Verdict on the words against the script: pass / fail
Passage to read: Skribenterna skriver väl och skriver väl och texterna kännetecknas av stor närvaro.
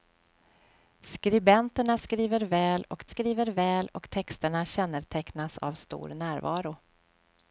pass